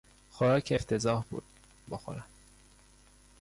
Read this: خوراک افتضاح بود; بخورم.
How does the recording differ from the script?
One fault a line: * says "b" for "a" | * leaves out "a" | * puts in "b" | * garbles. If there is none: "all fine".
all fine